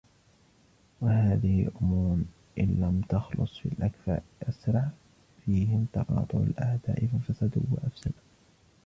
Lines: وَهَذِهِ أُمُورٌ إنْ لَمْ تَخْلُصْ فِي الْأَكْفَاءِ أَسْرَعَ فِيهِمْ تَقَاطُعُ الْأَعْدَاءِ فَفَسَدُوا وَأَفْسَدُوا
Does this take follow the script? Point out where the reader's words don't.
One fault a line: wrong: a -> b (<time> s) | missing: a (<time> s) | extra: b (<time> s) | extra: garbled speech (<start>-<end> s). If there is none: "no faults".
no faults